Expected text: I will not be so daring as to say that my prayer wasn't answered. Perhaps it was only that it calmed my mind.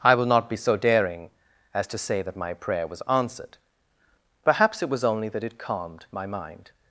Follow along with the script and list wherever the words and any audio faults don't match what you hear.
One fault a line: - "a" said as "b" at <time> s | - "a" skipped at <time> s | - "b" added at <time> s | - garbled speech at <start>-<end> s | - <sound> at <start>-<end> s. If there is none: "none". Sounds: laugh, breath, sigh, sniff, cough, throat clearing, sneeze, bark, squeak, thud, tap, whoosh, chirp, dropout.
- "wasn't" said as "was" at 2.9 s